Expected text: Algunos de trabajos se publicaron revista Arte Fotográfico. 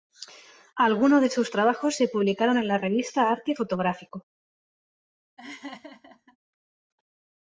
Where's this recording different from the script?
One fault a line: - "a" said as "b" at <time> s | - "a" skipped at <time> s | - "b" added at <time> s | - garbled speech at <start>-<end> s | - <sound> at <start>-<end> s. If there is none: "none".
- "sus" added at 1.3 s
- "en la" added at 2.6 s
- laugh at 5.4-6.4 s